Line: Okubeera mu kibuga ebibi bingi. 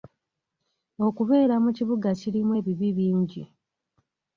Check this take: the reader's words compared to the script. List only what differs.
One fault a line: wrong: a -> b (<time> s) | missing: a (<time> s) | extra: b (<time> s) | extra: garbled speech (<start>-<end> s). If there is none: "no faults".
extra: kirimu (2.2 s)